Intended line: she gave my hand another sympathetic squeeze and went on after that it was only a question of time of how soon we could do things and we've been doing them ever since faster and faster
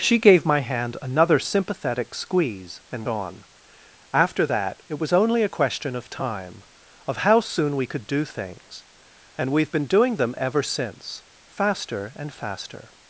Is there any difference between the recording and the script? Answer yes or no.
yes